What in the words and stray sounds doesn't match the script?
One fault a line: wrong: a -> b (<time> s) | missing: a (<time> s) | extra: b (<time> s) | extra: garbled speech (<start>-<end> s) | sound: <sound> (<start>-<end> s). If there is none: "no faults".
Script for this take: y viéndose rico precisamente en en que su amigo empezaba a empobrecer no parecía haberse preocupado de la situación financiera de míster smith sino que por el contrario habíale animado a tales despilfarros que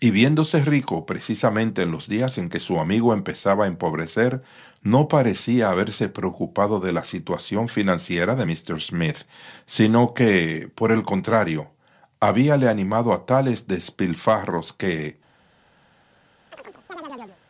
extra: los días (1.9 s)
sound: chirp (16.5-17.4 s)